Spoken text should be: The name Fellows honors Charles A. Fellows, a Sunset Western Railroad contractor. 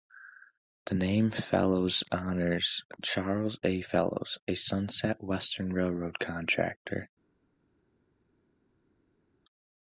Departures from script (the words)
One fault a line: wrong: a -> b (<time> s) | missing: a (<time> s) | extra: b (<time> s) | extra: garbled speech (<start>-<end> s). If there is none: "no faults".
no faults